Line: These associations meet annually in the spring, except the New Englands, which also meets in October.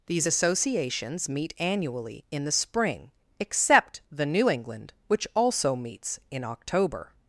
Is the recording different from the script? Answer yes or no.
yes